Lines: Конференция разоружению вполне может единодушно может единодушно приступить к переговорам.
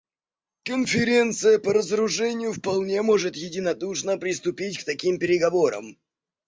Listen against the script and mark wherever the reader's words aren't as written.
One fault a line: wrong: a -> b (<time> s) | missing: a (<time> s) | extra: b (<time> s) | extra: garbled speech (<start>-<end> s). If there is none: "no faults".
extra: по (1.6 s)
missing: может единодушно (4.2 s)
extra: таким (4.8 s)